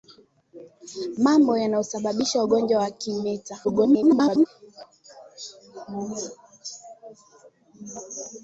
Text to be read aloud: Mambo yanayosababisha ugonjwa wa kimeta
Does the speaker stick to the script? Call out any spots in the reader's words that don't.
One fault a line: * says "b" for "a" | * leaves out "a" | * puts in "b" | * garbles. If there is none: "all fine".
* garbles